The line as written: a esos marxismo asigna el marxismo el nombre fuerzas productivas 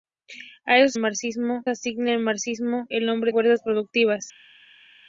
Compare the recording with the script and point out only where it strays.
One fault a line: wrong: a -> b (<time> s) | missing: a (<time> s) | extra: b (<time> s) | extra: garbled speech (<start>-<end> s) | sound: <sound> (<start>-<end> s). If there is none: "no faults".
no faults